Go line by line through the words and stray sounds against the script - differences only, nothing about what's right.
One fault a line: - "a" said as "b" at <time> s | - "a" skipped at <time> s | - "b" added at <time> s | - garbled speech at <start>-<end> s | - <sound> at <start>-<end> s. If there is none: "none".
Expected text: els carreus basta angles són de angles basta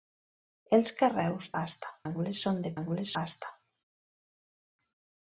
none